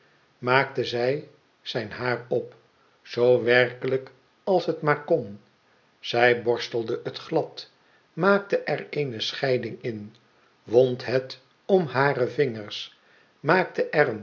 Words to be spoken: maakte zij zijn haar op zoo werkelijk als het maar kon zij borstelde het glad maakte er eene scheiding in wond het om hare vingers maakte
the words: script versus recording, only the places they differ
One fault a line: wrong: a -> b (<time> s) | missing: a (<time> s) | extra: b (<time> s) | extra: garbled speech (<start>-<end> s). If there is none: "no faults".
no faults